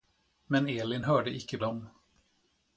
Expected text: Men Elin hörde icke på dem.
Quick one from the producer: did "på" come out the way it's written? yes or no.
no